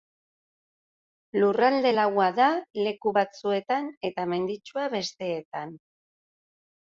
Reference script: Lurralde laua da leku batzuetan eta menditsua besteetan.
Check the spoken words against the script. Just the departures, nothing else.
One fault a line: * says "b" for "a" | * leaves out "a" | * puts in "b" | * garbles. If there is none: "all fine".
all fine